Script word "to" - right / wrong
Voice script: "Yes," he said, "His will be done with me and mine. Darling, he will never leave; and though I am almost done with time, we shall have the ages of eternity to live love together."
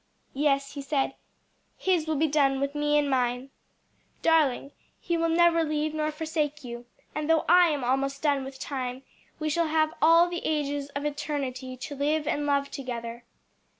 right